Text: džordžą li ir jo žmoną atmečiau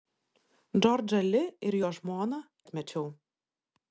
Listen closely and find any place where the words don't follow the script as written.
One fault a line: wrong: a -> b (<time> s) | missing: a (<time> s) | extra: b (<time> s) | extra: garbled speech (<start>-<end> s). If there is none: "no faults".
no faults